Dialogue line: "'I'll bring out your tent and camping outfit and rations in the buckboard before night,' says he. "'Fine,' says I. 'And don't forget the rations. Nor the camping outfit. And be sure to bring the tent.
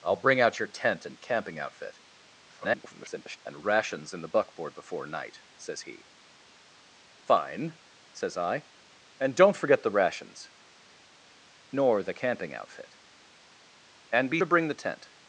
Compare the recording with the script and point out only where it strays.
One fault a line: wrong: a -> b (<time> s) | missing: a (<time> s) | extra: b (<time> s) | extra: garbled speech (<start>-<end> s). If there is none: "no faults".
extra: garbled speech (2.5-3.4 s)
missing: sure (14.4 s)